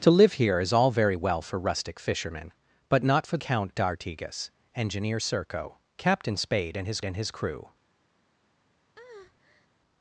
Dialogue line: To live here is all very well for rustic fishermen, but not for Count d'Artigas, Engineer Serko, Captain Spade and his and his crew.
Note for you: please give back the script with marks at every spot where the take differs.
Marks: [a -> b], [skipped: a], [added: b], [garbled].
To live here is all very well for rustic fishermen, but not for Count d'Artigas, Engineer Serko, Captain Spade and his and his crew.